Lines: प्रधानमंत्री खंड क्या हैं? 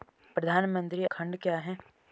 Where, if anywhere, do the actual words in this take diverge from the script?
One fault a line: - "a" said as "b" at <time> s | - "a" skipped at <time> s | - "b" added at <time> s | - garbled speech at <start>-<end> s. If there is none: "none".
none